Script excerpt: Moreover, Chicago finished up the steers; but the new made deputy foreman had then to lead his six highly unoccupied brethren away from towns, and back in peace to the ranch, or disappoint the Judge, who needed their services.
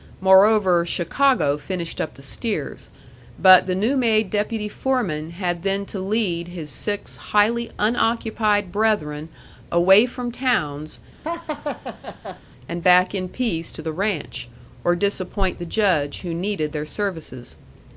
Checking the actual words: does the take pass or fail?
pass